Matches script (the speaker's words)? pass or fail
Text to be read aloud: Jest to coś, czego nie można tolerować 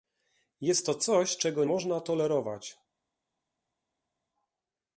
fail